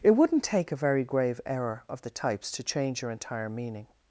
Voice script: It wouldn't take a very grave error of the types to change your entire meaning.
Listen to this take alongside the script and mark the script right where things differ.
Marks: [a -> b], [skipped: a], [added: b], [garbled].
It wouldn't take a very grave error of the types to change your entire meaning.